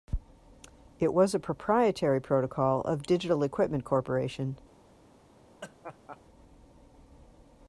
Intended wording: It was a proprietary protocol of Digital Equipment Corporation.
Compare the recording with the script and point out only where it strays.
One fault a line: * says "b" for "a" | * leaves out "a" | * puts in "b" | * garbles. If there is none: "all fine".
all fine